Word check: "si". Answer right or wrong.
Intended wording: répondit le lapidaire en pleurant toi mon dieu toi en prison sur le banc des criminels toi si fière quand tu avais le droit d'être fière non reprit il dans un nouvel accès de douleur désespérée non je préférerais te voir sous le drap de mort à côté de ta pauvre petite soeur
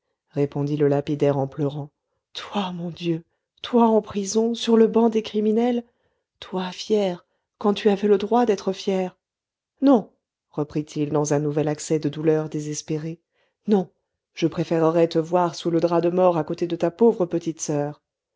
wrong